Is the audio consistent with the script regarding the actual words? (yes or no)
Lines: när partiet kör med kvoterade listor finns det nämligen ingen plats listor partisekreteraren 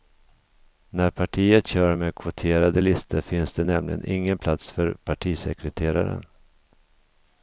no